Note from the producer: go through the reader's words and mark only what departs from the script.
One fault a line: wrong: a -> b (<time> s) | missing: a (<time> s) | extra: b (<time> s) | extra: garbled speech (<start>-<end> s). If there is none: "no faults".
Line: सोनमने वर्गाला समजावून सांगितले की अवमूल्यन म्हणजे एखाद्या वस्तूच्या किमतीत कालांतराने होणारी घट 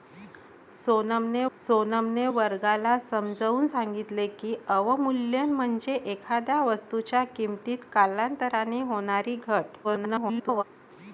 extra: सोनमने (1.5 s)
extra: garbled speech (9.8-10.6 s)